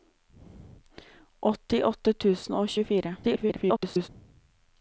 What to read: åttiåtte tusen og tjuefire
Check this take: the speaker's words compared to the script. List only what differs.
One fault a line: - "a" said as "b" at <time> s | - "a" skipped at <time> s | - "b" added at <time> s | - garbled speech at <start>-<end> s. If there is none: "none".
- garbled speech at 3.2-4.1 s